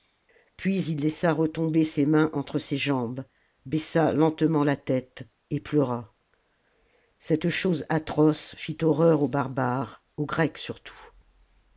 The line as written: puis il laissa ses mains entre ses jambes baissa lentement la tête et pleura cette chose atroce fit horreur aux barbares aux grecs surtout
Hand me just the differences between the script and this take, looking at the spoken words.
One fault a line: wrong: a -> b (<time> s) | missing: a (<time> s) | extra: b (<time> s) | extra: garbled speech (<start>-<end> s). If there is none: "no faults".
extra: retomber (1.3 s)